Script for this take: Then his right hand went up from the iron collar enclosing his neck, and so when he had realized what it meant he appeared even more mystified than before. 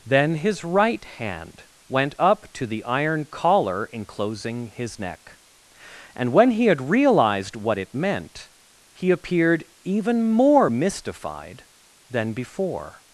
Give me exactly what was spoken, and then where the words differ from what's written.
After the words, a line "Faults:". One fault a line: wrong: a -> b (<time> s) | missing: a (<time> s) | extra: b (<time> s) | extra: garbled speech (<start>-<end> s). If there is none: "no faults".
Then his right hand went up to the iron collar enclosing his neck, and when he had realized what it meant he appeared even more mystified than before.
Faults:
wrong: from -> to (2.5 s)
missing: so (6.3 s)